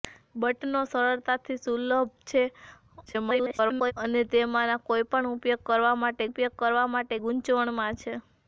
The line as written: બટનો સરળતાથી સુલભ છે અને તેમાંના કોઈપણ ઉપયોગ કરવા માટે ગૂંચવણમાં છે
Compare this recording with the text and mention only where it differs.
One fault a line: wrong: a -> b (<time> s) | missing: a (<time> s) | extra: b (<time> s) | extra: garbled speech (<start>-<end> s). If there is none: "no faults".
extra: garbled speech (3.1-3.9 s)
extra: ઉપયોગ કરવા માટે (6.2 s)